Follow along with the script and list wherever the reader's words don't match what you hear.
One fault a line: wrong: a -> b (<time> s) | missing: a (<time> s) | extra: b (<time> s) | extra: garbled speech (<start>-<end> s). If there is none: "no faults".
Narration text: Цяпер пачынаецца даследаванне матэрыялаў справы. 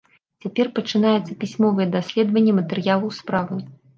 extra: пісьмовае (1.4 s)